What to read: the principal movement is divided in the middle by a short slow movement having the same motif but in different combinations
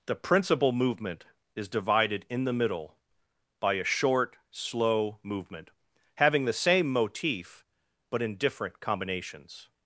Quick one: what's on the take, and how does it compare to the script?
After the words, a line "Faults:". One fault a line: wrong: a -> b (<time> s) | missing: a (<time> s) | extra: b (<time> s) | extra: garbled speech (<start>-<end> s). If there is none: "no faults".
the principal movement is divided in the middle by a short slow movement having the same motif but in different combinations
Faults:
no faults